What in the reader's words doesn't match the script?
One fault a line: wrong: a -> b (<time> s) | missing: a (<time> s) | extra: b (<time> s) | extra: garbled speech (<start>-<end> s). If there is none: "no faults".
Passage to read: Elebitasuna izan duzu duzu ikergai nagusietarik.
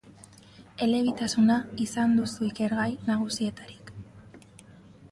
missing: duzu (2.5 s)